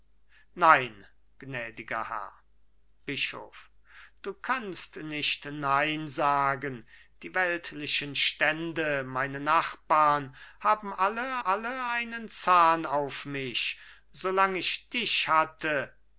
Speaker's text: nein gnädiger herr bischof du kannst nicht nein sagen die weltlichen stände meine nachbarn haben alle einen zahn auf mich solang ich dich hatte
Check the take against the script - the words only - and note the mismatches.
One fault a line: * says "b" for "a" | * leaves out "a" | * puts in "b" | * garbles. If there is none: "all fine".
* puts in "alle"